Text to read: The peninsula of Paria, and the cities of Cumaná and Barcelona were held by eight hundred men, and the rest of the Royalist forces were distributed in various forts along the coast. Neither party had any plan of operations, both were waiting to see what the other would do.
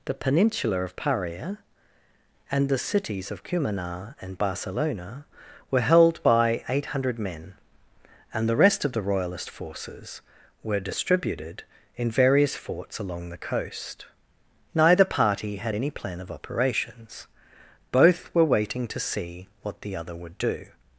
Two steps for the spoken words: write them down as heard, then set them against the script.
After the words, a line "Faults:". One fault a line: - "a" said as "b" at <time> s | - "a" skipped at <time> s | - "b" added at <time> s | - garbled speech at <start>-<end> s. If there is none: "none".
The peninsula of Paria, and the cities of Cumaná and Barcelona were held by eight hundred men, and the rest of the Royalist forces were distributed in various forts along the coast. Neither party had any plan of operations, both were waiting to see what the other would do.
Faults:
none